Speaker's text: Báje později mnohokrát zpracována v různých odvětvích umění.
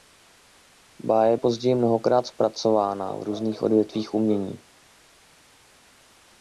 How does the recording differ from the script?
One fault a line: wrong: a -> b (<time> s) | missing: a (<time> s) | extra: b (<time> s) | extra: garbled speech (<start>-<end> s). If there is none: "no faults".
no faults